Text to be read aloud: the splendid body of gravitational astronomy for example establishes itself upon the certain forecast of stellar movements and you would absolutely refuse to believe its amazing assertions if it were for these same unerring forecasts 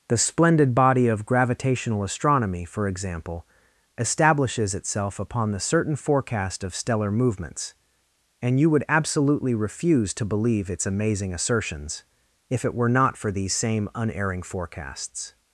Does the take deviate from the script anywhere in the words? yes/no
yes